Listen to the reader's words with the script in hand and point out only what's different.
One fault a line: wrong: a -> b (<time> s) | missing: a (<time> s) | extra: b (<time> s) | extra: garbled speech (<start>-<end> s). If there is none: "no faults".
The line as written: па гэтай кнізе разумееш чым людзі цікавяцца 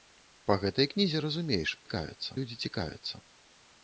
wrong: чым -> цікавяцца (1.8 s)